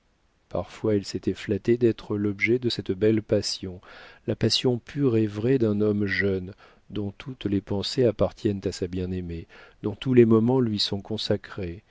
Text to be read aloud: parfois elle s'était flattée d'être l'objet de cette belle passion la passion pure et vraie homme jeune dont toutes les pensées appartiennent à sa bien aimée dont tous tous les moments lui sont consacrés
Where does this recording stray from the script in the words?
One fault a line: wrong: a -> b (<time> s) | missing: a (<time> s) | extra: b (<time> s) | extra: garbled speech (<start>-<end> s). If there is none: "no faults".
extra: d'un (5.5 s)
missing: tous (10.1 s)